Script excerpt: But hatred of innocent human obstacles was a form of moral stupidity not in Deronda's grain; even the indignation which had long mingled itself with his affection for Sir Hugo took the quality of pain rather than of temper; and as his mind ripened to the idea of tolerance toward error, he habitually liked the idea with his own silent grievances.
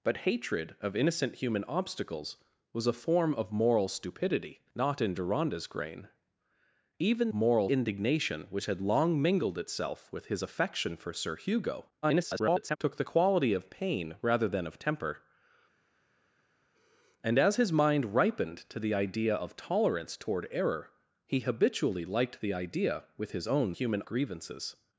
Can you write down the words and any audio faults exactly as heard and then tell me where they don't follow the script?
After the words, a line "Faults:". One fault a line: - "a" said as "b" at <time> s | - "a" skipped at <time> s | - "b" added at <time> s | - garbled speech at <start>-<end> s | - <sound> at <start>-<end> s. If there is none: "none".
But hatred of innocent human obstacles was a form of moral stupidity not in Deronda's grain; even moral indignation which had long mingled itself with his affection for Sir Hugo [garbled] took the quality of pain rather than of temper; and as his mind ripened to the idea of tolerance toward error, he habitually liked the idea with his own human grievances.
Faults:
- "the" said as "moral" at 7.3 s
- garbled speech at 12.0-12.8 s
- "silent" said as "human" at 23.7 s